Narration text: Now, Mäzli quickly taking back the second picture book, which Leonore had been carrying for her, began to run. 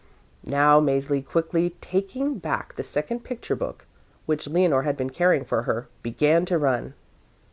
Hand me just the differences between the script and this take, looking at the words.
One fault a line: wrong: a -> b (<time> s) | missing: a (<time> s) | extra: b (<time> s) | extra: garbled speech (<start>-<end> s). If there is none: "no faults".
no faults